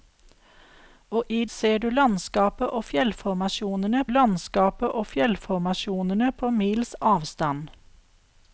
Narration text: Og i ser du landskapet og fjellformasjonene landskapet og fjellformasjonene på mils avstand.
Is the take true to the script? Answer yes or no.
yes